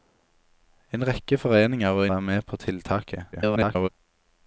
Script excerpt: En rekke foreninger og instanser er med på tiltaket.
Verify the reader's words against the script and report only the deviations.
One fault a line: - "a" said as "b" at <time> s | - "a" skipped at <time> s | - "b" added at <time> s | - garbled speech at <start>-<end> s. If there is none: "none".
- "instanser" skipped at 2.1 s
- garbled speech at 3.3-3.9 s